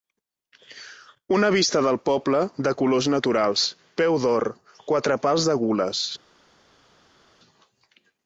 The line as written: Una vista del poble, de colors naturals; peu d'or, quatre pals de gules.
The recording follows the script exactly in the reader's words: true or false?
true